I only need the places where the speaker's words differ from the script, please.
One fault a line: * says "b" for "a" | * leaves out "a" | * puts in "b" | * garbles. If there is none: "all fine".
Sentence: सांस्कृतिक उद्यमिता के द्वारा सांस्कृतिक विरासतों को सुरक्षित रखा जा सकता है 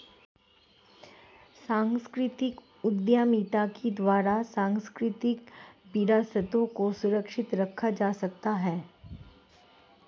all fine